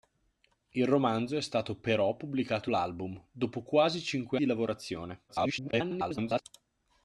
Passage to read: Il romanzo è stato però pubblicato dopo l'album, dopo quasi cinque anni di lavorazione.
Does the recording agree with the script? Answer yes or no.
no